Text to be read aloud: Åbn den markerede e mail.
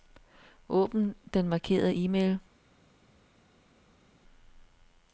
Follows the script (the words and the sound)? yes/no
yes